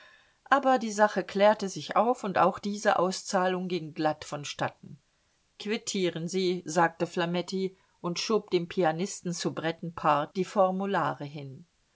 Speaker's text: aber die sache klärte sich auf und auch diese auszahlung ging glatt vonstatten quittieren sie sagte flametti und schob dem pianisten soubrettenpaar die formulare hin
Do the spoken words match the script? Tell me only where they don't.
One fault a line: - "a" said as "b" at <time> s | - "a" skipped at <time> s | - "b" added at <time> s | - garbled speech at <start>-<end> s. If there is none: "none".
none